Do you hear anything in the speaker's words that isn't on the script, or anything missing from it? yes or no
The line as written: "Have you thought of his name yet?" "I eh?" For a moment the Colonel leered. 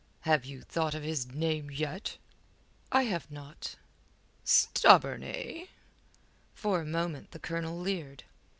yes